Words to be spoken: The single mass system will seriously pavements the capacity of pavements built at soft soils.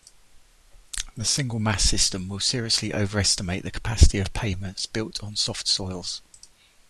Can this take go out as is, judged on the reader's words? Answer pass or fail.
fail